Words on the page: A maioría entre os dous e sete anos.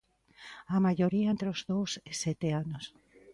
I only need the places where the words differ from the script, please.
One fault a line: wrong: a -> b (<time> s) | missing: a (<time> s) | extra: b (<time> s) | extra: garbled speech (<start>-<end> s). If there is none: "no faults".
no faults